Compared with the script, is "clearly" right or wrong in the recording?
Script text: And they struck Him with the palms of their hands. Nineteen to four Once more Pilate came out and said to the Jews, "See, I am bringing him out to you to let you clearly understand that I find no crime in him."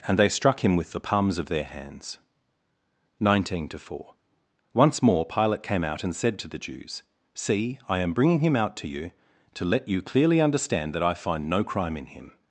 right